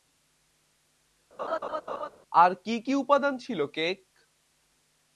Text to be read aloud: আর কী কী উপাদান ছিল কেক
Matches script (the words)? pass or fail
pass